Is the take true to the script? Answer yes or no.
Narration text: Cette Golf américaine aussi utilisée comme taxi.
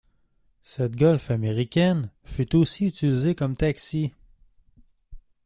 no